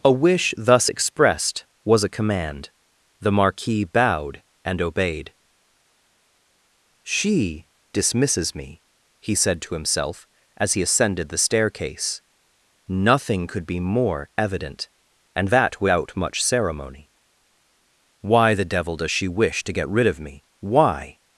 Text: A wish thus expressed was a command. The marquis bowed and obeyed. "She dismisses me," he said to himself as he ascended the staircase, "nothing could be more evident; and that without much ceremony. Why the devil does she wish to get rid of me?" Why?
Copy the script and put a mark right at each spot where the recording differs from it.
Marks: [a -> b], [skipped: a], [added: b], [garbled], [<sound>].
A wish thus expressed was a command. The marquis bowed and obeyed. "She dismisses me," he said to himself as he ascended the staircase, "nothing could be more evident; and that without much ceremony. Why the devil does she wish to get rid of me?" Why?